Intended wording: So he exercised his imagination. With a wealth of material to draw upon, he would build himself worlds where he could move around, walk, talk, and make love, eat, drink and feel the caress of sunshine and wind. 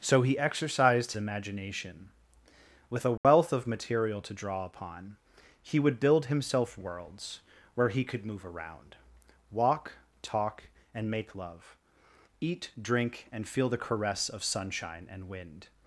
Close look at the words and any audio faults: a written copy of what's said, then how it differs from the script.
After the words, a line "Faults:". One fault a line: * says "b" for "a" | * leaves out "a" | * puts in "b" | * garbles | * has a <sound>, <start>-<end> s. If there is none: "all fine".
So he exercised imagination. With a wealth of material to draw upon, he would build himself worlds where he could move around, walk, talk, and make love, eat, drink and feel the caress of sunshine and wind.
Faults:
* leaves out "his"
* has a dropout, 3.2-3.2 s